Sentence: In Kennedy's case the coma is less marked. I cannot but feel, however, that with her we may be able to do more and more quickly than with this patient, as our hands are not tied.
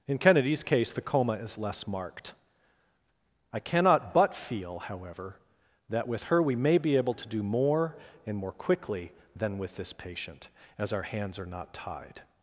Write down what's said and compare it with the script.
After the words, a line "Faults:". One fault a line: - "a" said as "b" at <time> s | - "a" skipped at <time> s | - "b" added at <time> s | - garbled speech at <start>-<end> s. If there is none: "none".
In Kennedy's case the coma is less marked. I cannot but feel, however, that with her we may be able to do more and more quickly than with this patient, as our hands are not tied.
Faults:
none